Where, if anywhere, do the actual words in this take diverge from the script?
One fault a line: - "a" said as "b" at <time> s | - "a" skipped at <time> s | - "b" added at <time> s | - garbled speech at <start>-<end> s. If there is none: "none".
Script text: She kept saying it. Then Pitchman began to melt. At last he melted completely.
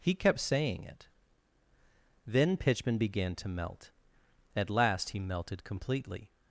- "She" said as "He" at 0.0 s